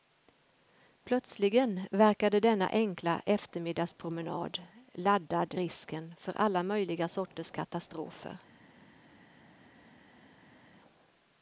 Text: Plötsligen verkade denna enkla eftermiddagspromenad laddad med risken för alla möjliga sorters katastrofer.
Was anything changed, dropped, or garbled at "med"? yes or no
yes